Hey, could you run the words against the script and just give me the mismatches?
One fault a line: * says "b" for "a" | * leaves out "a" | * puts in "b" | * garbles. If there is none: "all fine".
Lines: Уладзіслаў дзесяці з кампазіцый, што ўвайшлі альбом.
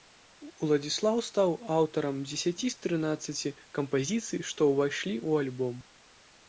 * puts in "стаў аўтарам"
* puts in "трынаццаці"
* puts in "ў"